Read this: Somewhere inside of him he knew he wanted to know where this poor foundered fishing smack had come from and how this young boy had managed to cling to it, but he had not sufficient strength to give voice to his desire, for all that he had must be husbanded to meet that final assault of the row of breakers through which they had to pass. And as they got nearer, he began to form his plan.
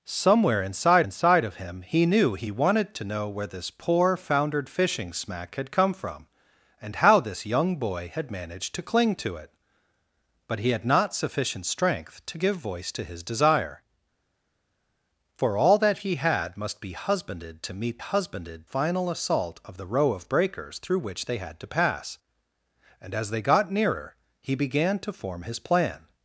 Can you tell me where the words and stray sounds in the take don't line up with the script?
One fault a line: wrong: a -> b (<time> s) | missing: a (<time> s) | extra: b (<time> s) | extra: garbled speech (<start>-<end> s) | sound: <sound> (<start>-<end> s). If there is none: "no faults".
extra: inside (1.0 s)
wrong: that -> husbanded (18.0 s)